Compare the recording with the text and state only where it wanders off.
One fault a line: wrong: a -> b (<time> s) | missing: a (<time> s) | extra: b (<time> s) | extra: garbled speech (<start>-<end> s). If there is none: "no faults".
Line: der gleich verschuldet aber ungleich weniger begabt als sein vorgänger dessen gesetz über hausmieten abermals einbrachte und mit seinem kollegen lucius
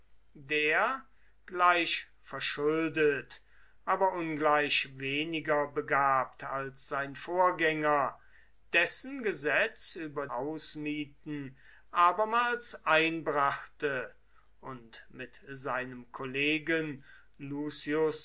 no faults